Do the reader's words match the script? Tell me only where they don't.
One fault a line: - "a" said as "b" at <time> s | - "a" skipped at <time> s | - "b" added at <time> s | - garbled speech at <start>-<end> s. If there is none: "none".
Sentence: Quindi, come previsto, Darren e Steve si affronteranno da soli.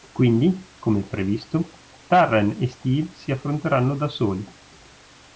none